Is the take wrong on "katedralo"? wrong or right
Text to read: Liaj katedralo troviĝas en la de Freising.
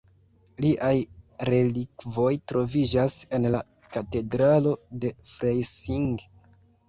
wrong